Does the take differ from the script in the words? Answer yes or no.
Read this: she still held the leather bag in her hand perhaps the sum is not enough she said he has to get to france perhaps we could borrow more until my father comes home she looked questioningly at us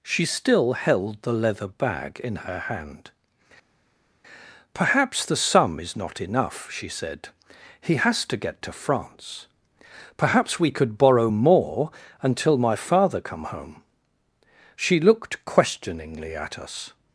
yes